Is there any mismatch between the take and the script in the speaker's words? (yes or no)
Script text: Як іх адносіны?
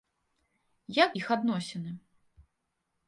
no